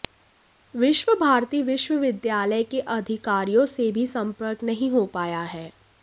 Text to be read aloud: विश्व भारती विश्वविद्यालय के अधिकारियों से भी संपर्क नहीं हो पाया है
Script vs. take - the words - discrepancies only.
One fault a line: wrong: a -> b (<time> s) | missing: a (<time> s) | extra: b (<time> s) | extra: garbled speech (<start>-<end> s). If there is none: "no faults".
no faults